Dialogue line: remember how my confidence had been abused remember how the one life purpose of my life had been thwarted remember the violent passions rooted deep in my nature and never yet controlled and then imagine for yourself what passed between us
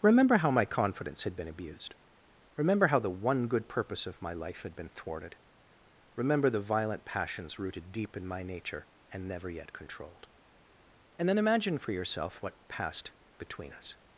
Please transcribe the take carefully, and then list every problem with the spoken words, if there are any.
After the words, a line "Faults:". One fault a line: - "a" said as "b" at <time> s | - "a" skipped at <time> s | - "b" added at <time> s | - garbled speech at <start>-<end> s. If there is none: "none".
remember how my confidence had been abused remember how the one good purpose of my life had been thwarted remember the violent passions rooted deep in my nature and never yet controlled and then imagine for yourself what passed between us
Faults:
- "life" said as "good" at 3.5 s